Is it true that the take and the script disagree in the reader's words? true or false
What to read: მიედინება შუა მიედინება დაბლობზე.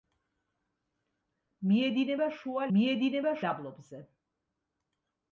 false